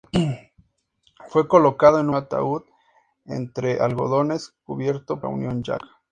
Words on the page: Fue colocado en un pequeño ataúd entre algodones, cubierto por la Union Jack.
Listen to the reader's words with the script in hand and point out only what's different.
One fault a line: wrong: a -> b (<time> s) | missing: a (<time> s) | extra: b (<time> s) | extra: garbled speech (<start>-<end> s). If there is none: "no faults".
missing: un pequeño (2.1 s)
missing: por (5.2 s)